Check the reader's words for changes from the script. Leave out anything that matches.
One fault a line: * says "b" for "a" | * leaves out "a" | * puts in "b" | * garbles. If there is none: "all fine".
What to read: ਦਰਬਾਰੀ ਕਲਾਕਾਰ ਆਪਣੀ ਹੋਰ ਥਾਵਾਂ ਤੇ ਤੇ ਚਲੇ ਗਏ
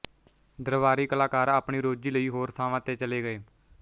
* puts in "ਰੋਜ਼ੀ ਲਈ"
* leaves out "ਤੇ"